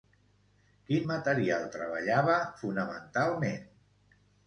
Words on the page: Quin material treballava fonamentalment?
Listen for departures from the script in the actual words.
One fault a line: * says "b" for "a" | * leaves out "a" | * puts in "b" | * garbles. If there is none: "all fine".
all fine